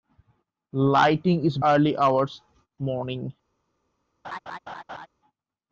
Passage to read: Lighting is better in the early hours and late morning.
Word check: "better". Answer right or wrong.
wrong